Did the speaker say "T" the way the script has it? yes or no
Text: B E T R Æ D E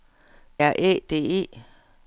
no